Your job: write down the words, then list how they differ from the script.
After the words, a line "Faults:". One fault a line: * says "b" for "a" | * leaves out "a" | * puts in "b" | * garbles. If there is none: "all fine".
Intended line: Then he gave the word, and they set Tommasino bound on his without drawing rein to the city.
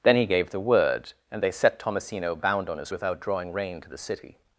Then he gave the word, and they set Tommasino bound on his without drawing rein to the city.
Faults:
all fine